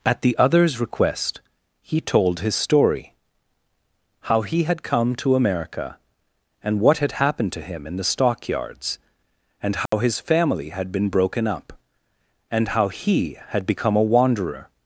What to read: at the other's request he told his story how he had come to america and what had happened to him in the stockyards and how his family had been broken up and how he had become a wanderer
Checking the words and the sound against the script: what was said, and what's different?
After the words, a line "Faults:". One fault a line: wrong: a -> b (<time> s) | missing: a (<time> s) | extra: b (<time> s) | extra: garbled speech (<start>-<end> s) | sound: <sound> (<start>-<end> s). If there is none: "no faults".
at the other's request he told his story how he had come to america and what had happened to him in the stockyards and how his family had been broken up and how he had become a wanderer
Faults:
sound: dropout (9.9-9.9 s)